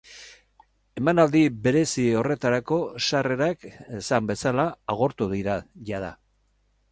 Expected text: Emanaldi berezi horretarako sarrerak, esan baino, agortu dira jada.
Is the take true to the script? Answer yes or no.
no